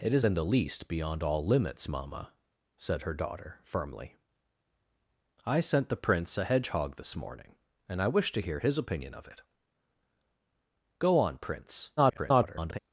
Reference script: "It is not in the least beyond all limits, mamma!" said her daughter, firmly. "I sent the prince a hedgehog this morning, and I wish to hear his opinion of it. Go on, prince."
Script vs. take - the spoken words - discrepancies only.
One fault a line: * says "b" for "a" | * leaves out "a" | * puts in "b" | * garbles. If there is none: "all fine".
* leaves out "not"
* garbles